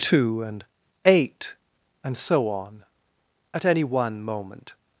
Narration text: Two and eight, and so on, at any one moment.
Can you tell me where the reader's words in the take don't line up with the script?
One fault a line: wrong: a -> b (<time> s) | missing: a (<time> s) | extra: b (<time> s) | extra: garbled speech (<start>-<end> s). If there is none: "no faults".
no faults